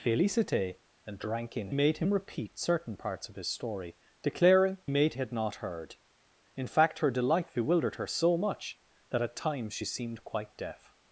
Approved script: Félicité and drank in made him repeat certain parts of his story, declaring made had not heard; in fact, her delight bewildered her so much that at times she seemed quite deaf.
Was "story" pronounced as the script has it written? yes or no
yes